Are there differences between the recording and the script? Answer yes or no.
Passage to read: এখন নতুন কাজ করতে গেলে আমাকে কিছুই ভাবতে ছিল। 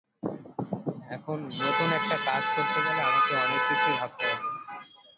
yes